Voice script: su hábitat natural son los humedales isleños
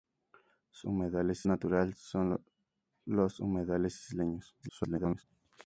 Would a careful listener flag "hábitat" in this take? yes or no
yes